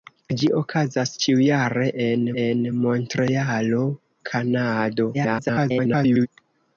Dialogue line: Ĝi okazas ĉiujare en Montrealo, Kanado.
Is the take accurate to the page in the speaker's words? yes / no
no